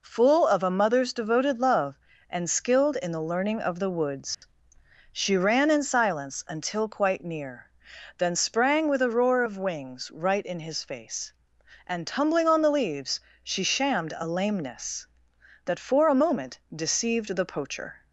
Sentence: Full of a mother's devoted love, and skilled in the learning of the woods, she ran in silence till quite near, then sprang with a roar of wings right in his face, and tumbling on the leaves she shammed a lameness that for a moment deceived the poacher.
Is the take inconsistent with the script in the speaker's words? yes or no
yes